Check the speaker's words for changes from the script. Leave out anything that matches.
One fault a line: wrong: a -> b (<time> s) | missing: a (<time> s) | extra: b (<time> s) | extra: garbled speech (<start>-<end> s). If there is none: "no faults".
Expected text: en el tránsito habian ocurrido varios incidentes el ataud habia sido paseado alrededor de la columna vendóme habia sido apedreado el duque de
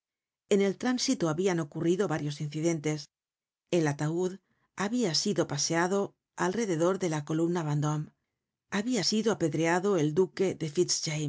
no faults